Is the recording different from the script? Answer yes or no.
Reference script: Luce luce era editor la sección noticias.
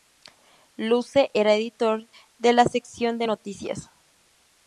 yes